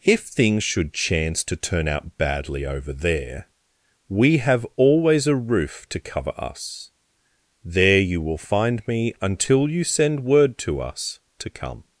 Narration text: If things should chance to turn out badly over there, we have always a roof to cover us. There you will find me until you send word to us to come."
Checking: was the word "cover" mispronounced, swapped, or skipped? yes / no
no